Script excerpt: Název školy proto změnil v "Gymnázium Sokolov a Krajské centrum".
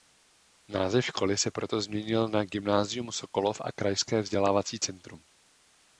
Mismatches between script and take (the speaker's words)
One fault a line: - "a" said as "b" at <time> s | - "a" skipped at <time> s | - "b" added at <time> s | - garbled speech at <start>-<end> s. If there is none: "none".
- "se" added at 1.4 s
- "v" said as "na" at 2.3 s
- "vzdělávací" added at 4.2 s